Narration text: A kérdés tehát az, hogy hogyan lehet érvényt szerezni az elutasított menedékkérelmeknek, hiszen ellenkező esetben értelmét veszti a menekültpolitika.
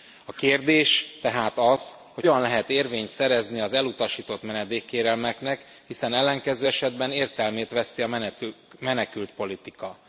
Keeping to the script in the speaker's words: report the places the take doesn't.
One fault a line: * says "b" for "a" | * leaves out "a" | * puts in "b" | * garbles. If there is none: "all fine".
all fine